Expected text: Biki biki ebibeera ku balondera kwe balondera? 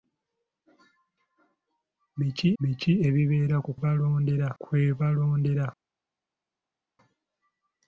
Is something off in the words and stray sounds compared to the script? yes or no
no